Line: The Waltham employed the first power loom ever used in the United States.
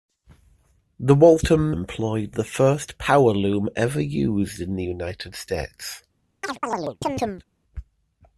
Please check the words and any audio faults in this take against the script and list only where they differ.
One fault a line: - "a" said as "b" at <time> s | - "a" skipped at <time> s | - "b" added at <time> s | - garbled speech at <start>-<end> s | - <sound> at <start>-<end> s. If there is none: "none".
- chirp at 6.4-7.4 s